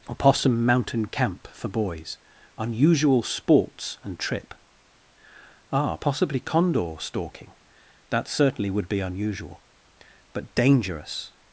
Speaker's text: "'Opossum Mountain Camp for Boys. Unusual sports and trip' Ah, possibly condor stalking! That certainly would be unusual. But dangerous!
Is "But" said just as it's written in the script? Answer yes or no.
yes